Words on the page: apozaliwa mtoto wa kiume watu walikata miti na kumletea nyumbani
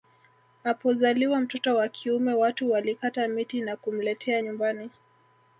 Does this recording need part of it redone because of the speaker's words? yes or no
no